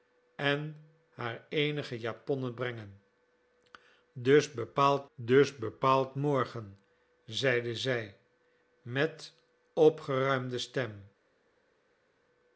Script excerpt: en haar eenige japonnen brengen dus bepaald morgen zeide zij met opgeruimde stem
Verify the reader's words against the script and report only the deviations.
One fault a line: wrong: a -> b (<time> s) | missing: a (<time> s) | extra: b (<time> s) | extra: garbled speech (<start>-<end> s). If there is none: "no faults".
extra: dus bepaald (5.2 s)